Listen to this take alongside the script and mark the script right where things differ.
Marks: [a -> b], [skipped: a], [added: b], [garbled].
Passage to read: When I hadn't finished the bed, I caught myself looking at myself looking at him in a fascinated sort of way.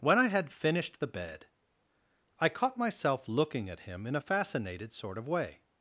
When I [hadn't -> had] finished the bed, I caught myself looking at [skipped: myself looking at] him in a fascinated sort of way.